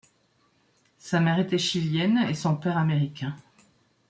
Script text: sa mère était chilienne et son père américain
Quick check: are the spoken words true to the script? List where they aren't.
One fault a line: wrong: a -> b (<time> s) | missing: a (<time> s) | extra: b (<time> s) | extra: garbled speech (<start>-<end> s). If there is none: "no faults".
no faults